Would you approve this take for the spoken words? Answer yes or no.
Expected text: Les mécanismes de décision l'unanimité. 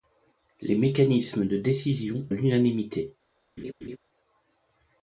yes